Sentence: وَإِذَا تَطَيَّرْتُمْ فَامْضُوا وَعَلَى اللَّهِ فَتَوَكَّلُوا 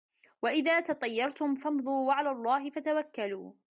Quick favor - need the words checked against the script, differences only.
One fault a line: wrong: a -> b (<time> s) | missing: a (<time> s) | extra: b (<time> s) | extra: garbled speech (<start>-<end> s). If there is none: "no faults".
no faults